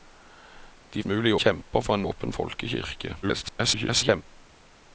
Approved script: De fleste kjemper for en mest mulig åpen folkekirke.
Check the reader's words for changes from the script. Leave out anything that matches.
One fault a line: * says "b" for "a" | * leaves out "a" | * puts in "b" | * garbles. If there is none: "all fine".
* says "mulig" for "fleste"
* leaves out "mest mulig"
* garbles